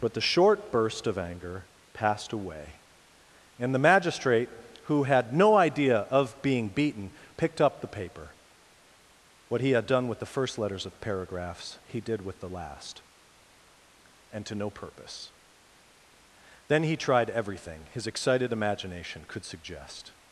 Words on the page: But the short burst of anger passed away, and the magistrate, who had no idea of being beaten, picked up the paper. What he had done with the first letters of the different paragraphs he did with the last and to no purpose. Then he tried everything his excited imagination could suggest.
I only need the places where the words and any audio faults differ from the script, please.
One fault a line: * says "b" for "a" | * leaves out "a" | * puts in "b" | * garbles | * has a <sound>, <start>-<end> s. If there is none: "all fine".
* leaves out "the different"